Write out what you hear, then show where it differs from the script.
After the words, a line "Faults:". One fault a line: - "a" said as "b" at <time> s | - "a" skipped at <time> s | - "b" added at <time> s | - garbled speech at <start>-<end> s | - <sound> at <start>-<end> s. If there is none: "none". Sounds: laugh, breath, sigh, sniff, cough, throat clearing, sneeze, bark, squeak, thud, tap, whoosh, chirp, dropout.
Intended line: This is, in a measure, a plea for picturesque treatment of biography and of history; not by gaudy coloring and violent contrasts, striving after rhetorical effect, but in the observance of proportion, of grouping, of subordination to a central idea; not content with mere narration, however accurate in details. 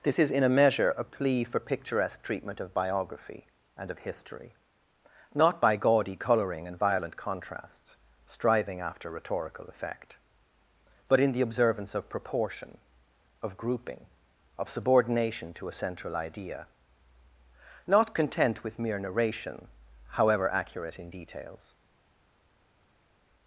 This is, in a measure, a plea for picturesque treatment of biography and of history; not by gaudy coloring and violent contrasts, striving after rhetorical effect, but in the observance of proportion, of grouping, of subordination to a central idea; not content with mere narration, however accurate in details.
Faults:
none